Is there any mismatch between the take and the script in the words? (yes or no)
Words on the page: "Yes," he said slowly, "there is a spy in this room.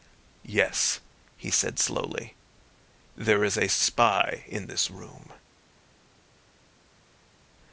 no